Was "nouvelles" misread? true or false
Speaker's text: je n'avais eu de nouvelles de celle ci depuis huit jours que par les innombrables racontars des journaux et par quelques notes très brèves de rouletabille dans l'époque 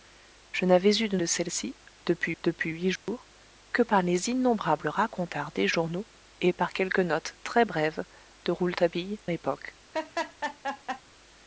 true